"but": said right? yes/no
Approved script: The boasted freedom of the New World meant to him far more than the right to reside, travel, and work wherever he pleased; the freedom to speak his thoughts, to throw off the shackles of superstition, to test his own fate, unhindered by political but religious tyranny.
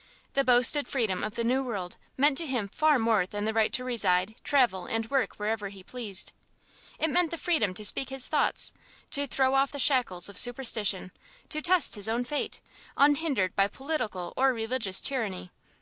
no